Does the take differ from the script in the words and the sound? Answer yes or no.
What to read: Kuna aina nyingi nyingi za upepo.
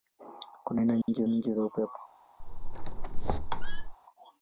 yes